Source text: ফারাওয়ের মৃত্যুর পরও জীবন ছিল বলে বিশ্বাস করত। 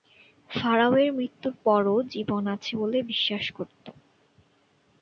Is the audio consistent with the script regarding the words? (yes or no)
no